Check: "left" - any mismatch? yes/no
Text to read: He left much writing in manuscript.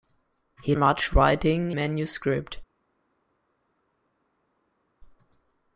yes